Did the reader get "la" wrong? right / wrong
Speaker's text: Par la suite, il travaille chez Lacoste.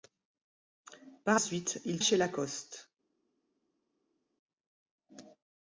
wrong